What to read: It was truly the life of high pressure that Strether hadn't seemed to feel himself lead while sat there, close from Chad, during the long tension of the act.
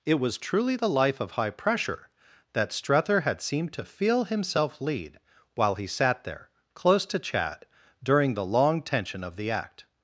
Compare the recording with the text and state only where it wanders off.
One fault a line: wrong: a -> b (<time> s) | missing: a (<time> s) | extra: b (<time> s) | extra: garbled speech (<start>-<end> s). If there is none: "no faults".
wrong: hadn't -> had (3.2 s)
extra: he (5.8 s)
wrong: from -> to (7.1 s)